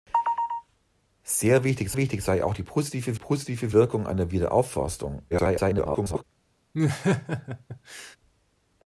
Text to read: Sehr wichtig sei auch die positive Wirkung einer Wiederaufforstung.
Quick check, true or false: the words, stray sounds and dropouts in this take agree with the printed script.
false